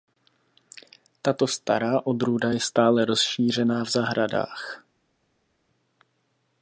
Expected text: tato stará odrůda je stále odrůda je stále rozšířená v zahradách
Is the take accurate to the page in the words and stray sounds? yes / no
no